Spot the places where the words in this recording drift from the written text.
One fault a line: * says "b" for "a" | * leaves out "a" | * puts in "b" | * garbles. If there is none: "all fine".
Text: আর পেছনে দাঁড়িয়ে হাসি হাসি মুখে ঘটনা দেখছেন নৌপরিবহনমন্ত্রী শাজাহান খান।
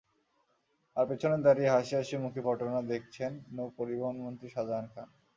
all fine